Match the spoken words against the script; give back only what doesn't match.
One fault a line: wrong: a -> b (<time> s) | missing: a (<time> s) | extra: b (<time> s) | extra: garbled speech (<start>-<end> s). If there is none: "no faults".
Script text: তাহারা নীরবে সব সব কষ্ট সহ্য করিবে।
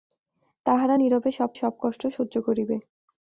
no faults